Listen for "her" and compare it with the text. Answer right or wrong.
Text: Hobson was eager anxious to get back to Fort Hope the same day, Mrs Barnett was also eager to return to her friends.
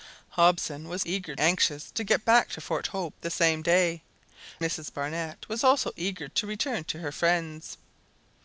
right